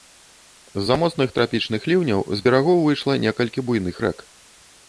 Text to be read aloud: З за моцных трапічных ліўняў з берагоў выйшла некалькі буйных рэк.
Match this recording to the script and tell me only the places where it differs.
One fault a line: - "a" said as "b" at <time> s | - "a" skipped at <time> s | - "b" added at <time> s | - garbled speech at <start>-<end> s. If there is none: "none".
none